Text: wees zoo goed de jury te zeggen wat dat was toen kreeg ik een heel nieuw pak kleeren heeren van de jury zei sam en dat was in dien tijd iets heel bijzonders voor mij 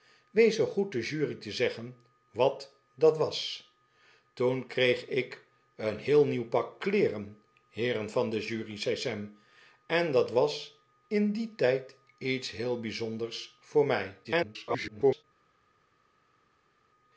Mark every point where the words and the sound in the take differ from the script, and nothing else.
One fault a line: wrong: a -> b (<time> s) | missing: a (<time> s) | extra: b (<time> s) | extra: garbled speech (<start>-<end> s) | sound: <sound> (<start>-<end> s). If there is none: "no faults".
extra: garbled speech (14.2-15.2 s)